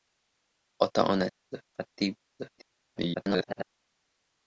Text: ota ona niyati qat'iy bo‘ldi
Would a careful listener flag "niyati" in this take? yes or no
yes